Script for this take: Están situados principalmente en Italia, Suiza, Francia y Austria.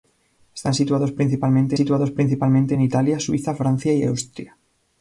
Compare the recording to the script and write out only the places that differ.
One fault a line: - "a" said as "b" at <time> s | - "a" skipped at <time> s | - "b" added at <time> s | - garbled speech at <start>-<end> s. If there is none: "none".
- "situados principalmente" added at 1.7 s